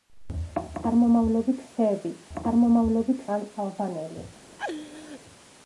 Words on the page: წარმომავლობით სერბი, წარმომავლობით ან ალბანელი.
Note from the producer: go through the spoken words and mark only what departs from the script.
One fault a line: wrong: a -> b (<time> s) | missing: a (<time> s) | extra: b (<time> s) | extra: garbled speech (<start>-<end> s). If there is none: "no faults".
no faults